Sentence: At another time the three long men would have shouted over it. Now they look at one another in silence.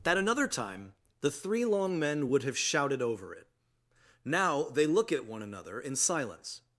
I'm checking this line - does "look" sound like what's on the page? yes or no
yes